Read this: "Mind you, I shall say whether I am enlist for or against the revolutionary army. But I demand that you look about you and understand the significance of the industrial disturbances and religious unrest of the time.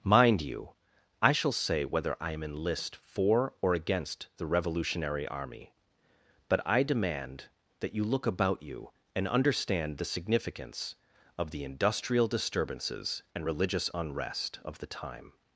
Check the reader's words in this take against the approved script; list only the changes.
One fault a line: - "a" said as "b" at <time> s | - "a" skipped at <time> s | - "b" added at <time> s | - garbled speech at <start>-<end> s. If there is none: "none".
none